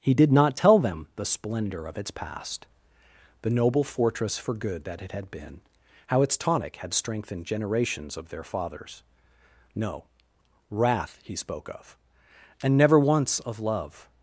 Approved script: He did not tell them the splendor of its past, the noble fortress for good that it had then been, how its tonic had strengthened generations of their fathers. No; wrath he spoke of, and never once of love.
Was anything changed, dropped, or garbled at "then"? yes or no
yes